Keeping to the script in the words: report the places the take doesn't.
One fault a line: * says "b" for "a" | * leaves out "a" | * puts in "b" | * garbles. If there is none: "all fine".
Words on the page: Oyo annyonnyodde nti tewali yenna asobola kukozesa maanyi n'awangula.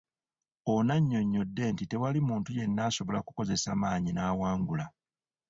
* says "Ono" for "Oyo"
* puts in "muntu"